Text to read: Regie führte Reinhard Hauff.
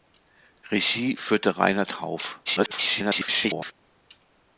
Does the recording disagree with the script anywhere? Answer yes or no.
yes